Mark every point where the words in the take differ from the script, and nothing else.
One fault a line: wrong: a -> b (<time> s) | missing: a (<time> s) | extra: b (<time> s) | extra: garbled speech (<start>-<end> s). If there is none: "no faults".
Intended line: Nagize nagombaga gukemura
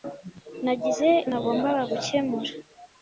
no faults